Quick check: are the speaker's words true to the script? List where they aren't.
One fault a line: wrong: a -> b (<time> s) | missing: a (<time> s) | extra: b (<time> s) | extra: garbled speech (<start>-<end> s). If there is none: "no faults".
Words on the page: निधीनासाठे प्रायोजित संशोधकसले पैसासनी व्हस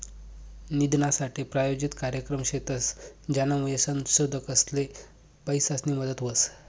extra: कार्यक्रम शेतस ज्यानामुये (1.9 s)
extra: मदत (6.0 s)